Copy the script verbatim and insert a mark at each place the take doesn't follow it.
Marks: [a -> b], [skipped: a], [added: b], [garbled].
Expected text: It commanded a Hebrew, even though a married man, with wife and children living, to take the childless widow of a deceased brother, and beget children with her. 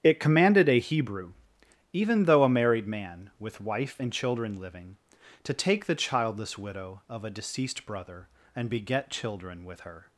It commanded a Hebrew, even though a married man, with wife and children living, to take the childless widow of a deceased brother, and beget children with her.